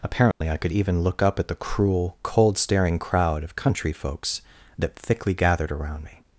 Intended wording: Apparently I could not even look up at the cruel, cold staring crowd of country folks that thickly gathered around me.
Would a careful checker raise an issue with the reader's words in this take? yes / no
yes